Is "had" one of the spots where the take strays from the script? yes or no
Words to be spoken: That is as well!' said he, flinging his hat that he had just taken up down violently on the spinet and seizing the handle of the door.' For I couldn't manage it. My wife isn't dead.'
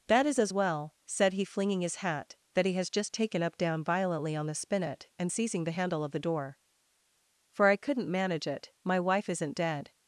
yes